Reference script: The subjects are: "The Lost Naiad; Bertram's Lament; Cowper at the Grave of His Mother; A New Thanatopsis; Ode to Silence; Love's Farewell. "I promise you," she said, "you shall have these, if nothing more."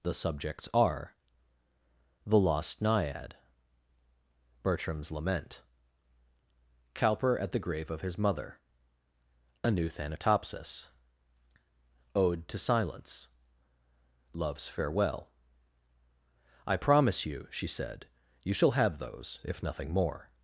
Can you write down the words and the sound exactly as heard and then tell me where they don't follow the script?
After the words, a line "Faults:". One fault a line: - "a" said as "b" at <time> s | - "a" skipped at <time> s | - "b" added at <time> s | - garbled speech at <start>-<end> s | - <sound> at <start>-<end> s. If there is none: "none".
The subjects are: "The Lost Naiad; Bertram's Lament; Cowper at the Grave of His Mother; A New Thanatopsis; Ode to Silence; Love's Farewell. "I promise you," she said, "you shall have those, if nothing more."
Faults:
- "these" said as "those" at 19.0 s